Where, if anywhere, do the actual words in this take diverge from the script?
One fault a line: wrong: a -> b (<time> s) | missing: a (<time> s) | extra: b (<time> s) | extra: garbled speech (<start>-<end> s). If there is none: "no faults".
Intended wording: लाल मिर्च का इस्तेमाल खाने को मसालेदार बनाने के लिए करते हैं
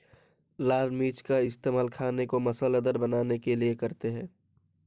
no faults